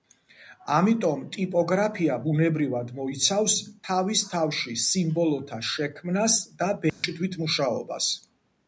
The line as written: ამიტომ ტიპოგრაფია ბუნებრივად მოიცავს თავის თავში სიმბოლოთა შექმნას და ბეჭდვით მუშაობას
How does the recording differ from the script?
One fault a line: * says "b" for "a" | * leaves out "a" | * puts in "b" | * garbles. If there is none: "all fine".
all fine